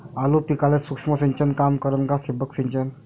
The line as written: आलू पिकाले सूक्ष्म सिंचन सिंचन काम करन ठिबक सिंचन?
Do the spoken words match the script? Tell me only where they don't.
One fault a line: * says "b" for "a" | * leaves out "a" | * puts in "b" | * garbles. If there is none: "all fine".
* leaves out "सिंचन"
* puts in "का"